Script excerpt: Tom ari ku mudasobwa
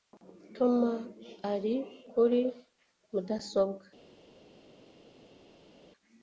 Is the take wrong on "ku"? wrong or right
wrong